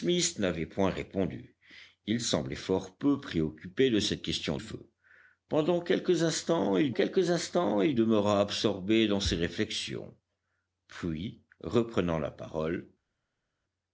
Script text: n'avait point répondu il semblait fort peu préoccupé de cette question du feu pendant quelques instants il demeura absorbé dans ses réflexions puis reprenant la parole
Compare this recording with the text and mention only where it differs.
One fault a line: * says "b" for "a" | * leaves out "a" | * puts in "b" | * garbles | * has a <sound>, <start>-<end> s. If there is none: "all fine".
* leaves out "du"
* puts in "quelques instants il"